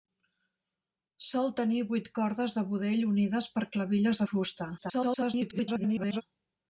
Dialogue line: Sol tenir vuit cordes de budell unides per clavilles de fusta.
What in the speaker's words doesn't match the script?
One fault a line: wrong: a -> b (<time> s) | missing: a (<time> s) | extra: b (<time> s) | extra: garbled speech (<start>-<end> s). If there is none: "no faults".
extra: garbled speech (4.8-6.2 s)